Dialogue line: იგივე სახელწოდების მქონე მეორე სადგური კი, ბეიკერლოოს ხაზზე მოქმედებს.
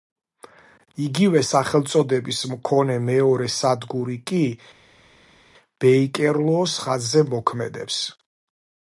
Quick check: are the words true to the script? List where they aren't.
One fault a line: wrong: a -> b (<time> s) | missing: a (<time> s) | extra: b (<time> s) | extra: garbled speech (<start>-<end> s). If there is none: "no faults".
no faults